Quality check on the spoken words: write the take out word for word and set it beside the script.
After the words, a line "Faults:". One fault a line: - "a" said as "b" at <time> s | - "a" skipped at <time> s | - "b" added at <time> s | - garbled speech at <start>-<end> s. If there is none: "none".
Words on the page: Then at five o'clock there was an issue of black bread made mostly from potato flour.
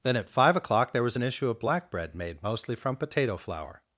Then at five o'clock there was an issue of black bread made mostly from potato flour.
Faults:
none